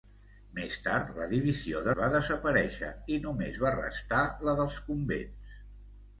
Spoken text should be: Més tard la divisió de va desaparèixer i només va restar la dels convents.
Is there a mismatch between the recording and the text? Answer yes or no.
no